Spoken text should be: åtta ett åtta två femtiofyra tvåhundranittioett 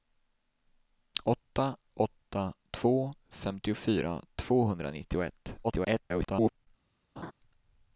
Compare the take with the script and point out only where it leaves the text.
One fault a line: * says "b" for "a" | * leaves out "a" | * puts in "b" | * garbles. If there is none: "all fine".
* leaves out "ett"
* garbles